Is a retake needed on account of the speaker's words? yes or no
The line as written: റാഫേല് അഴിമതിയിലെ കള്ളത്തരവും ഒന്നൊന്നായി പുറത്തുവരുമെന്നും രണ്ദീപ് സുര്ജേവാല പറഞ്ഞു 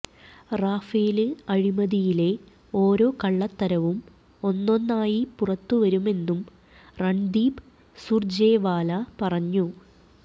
yes